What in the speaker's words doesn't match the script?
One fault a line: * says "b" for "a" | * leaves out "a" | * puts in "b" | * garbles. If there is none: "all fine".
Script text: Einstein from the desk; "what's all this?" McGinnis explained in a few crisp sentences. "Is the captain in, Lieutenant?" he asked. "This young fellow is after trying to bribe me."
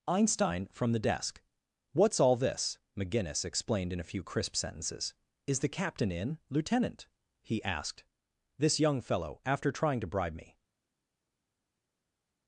* leaves out "is"